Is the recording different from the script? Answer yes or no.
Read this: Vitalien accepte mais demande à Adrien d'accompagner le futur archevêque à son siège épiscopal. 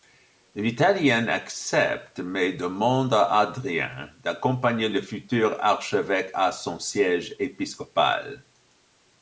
no